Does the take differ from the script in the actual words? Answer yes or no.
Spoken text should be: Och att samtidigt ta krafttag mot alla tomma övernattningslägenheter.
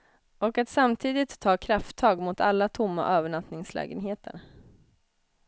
no